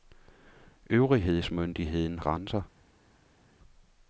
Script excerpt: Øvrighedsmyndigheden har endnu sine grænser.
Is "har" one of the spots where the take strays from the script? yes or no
yes